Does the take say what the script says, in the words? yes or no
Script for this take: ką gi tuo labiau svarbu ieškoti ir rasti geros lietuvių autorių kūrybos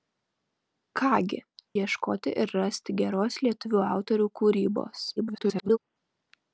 no